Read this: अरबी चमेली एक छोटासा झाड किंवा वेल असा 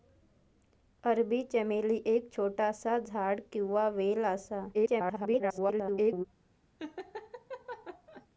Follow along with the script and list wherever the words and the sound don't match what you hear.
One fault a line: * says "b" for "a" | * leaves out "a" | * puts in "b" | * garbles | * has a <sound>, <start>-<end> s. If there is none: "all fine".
* garbles
* has a laugh, 6.8-8.3 s